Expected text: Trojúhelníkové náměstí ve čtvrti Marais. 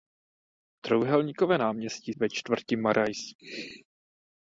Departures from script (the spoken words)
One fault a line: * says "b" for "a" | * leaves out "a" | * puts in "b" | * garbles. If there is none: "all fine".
all fine